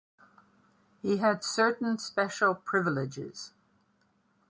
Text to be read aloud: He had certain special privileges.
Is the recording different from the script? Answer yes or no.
no